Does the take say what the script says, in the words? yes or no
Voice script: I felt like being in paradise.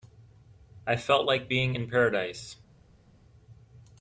yes